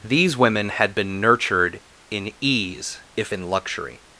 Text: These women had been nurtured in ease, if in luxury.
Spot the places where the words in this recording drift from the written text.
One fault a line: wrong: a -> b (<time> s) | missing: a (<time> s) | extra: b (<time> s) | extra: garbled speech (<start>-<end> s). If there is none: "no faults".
no faults